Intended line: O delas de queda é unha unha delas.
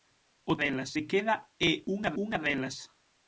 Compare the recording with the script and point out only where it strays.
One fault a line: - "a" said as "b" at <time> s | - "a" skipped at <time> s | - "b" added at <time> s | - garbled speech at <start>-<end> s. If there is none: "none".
none